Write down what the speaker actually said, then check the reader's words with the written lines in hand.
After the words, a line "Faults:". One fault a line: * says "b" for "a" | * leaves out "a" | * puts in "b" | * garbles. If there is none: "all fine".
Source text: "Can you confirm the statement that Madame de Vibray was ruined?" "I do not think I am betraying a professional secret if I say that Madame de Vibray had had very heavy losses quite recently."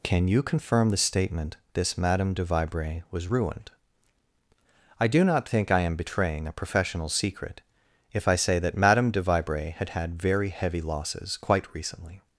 "Can you confirm the statement this Madame de Vibray was ruined?" "I do not think I am betraying a professional secret if I say that Madame de Vibray had had very heavy losses quite recently."
Faults:
* says "this" for "that"